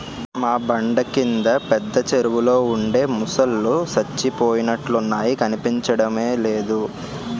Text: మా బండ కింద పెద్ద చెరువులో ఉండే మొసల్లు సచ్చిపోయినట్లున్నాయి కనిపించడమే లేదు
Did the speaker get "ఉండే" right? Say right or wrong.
right